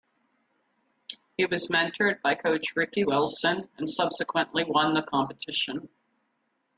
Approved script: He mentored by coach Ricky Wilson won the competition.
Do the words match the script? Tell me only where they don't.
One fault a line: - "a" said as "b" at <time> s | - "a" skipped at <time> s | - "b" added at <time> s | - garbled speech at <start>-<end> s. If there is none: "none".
- "was" added at 1.4 s
- "and subsequently" added at 3.8 s